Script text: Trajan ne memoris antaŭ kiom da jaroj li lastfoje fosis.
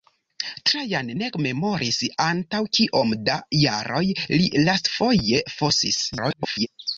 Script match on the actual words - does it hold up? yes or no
no